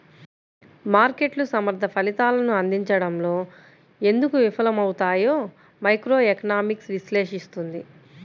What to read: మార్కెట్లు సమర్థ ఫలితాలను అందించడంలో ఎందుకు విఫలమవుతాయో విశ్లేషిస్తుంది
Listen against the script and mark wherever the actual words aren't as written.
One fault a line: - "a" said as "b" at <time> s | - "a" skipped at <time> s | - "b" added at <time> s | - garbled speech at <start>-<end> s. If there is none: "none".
- "మైక్రోఎకనామిక్స్" added at 5.8 s